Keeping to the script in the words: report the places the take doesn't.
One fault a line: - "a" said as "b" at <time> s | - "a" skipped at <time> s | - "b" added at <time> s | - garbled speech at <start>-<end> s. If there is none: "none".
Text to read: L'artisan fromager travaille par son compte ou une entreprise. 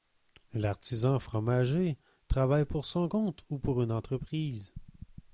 - "par" said as "pour" at 2.6 s
- "pour" added at 3.6 s